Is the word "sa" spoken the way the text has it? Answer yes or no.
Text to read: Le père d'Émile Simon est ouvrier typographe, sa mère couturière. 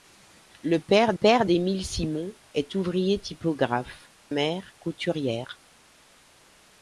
no